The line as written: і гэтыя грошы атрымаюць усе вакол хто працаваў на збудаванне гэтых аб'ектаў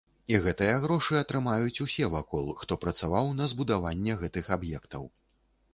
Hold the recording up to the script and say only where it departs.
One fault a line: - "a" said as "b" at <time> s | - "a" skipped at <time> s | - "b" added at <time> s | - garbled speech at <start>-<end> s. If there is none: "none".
none